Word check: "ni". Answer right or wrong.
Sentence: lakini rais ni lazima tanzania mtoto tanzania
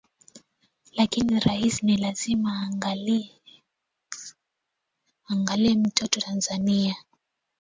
right